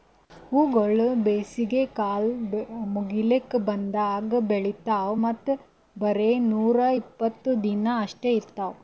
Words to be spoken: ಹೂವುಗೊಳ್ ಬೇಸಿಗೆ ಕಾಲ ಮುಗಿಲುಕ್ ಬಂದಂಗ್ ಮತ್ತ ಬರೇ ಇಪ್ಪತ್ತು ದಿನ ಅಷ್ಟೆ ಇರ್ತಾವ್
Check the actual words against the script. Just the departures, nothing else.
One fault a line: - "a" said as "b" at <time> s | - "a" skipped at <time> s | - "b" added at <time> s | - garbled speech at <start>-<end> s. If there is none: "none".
- "ಬೆಳಿತಾವ್" added at 4.5 s
- "ನೂರಾ" added at 6.5 s